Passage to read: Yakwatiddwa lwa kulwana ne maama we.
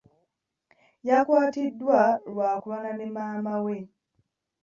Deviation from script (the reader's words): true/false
false